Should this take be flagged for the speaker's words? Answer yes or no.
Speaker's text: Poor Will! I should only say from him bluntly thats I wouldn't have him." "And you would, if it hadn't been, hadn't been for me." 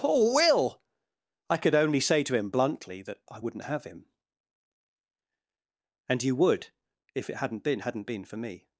yes